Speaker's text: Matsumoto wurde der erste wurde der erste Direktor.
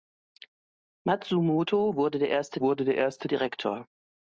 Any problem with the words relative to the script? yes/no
no